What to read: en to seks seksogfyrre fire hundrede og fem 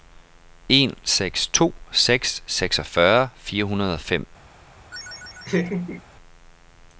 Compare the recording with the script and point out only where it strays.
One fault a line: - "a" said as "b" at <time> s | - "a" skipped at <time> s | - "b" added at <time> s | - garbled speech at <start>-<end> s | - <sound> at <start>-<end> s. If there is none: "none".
- "seks" added at 1.0 s
- laugh at 4.9-6.0 s